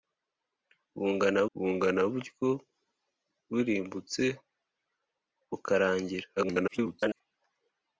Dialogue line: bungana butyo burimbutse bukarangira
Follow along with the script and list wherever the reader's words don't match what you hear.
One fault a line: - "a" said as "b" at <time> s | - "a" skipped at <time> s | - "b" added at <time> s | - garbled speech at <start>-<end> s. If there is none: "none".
- "bungana" added at 1.6 s
- garbled speech at 6.4-7.2 s